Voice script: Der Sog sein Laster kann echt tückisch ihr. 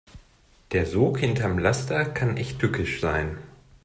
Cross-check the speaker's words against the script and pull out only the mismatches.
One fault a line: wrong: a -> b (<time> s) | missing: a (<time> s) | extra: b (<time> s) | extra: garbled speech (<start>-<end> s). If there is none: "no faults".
wrong: sein -> hinterm (1.2 s)
wrong: ihr -> sein (3.0 s)